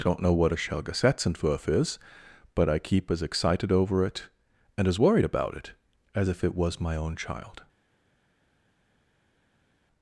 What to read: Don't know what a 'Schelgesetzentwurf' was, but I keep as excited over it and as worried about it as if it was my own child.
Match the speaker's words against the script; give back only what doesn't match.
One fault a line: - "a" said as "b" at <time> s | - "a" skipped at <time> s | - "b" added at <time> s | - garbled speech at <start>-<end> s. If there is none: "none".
- "was" said as "is" at 1.7 s